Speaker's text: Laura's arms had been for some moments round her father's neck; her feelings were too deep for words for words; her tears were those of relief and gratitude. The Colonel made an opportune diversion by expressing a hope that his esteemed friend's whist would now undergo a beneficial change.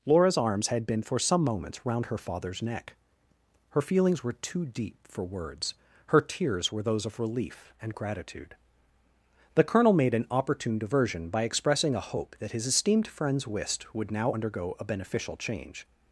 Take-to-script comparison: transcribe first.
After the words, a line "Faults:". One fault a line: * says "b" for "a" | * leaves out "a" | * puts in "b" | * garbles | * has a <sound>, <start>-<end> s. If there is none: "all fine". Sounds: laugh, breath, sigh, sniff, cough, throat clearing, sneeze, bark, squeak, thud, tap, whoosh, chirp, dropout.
Laura's arms had been for some moments round her father's neck; her feelings were too deep for words; her tears were those of relief and gratitude. The Colonel made an opportune diversion by expressing a hope that his esteemed friend's whist would now undergo a beneficial change.
Faults:
* leaves out "for words"